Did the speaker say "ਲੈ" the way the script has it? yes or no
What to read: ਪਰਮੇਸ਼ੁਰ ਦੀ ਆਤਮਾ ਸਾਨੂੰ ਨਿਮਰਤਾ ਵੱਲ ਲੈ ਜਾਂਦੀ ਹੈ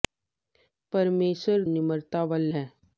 no